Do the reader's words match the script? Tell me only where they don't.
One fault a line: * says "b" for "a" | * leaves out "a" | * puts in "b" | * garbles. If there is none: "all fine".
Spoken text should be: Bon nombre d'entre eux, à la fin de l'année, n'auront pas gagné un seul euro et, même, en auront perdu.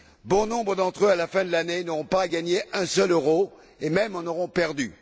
all fine